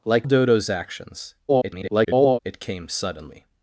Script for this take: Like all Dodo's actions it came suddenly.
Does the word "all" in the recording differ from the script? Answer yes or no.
yes